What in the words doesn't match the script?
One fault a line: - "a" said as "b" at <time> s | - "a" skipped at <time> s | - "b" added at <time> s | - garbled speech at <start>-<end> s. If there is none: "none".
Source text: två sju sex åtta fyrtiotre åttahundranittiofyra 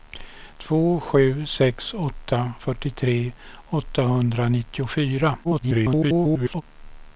- garbled speech at 5.4-6.6 s